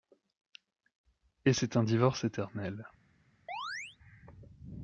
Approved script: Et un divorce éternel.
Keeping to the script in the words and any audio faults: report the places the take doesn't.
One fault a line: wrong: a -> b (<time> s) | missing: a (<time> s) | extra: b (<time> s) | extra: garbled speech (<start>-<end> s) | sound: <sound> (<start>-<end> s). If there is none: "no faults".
extra: c'est (1.5 s)
sound: chirp (3.5-4.0 s)